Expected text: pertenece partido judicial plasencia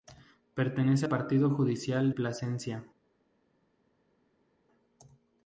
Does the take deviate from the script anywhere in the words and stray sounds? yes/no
no